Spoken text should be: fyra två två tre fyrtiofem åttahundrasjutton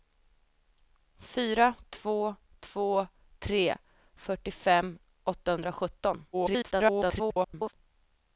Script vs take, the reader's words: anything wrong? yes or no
yes